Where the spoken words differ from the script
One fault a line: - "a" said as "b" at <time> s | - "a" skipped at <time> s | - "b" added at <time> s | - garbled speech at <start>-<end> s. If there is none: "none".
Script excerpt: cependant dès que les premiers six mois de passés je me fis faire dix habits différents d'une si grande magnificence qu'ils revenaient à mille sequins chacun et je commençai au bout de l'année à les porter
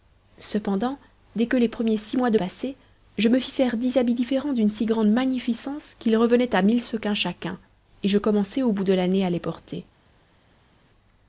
none